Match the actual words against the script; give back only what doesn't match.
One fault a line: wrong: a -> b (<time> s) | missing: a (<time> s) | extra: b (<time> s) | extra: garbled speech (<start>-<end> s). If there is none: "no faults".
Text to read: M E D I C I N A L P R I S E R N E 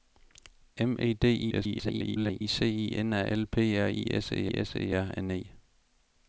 extra: garbled speech (1.5-2.4 s)
extra: S E (4.5 s)